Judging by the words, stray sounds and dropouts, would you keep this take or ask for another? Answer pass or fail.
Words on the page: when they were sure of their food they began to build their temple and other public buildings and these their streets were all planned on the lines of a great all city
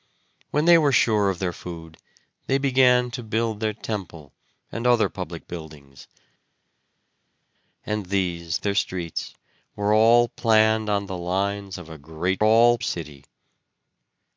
pass